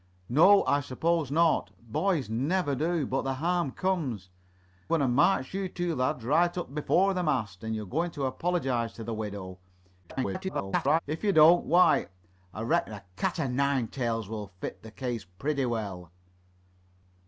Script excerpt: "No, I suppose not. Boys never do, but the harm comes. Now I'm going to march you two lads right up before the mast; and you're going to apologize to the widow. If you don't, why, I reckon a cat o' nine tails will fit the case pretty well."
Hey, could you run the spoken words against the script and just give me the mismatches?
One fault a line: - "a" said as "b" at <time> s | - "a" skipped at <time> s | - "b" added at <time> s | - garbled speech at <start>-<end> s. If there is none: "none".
- "Now I'm" skipped at 4.3 s
- garbled speech at 10.0-11.0 s